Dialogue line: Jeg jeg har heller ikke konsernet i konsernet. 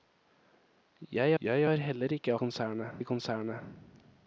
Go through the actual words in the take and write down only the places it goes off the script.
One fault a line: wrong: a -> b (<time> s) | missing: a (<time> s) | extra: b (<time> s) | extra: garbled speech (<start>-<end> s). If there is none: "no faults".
no faults